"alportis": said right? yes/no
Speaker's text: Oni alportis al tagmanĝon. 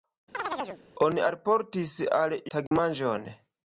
yes